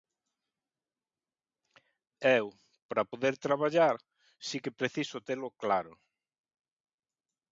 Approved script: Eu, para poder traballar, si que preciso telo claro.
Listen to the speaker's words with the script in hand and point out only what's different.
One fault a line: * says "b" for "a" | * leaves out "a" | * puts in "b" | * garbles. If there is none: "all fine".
all fine